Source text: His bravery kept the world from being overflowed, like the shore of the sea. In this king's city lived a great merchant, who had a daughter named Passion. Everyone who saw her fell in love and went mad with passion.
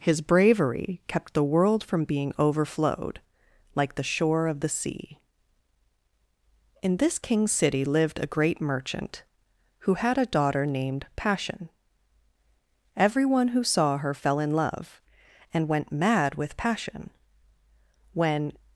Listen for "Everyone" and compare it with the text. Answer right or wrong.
right